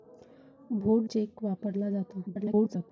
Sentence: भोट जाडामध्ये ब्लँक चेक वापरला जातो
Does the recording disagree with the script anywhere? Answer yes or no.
yes